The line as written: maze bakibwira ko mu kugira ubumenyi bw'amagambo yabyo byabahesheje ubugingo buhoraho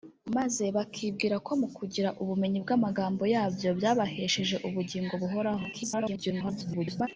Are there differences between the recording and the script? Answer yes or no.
yes